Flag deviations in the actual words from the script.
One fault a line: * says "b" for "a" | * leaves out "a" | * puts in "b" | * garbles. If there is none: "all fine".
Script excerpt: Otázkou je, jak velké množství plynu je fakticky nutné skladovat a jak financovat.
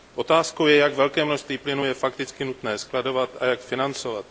all fine